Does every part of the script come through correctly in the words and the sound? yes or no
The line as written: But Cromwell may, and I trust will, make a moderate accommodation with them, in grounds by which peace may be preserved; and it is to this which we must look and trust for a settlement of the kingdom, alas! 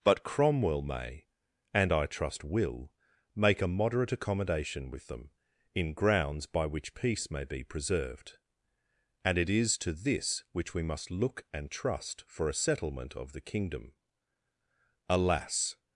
yes